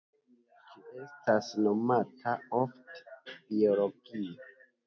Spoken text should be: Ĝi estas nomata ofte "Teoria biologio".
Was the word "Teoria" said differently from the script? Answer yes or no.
yes